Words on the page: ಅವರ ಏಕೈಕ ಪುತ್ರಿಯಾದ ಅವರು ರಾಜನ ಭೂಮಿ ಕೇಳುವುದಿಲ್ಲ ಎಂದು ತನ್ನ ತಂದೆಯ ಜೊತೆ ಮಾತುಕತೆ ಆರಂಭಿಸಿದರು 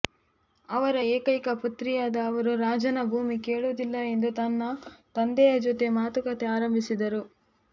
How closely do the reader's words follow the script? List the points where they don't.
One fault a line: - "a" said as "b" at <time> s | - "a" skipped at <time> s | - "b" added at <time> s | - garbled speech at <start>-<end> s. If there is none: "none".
none